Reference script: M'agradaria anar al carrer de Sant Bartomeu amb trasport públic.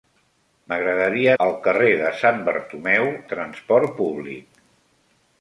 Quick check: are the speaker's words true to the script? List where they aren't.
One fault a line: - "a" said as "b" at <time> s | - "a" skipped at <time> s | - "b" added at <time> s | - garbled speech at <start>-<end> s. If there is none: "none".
- "anar" skipped at 1.3 s
- "amb" skipped at 3.1 s